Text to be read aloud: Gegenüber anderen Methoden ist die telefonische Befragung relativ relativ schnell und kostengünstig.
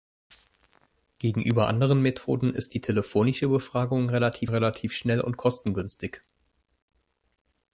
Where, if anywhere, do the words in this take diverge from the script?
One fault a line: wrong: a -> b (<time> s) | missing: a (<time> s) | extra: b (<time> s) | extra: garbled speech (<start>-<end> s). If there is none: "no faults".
no faults